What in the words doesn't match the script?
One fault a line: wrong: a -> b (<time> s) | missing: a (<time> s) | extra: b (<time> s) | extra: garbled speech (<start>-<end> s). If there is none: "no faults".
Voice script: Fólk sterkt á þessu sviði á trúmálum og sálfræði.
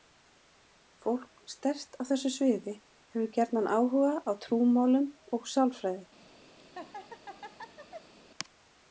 extra: hefur gjarnan áhuga (2.8 s)